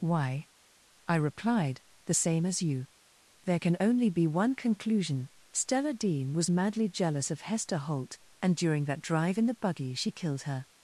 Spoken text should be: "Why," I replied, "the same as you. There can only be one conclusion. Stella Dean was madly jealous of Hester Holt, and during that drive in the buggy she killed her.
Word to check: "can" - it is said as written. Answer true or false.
true